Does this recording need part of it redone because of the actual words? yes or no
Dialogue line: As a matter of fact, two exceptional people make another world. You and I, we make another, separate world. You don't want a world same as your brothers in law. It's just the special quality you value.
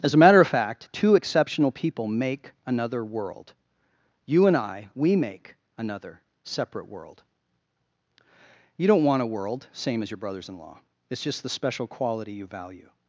no